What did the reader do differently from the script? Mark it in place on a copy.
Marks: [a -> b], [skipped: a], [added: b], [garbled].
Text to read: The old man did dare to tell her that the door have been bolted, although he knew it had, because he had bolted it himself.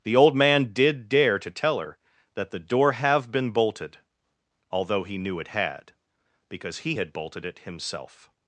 The old man did dare to tell her that the door have been bolted, although he knew it had, because he had bolted it himself.